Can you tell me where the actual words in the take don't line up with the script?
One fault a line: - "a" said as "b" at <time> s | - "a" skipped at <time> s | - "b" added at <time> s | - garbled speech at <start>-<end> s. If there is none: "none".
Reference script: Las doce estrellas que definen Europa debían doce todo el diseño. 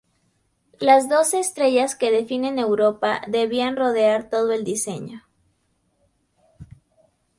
- "doce" said as "rodear" at 3.7 s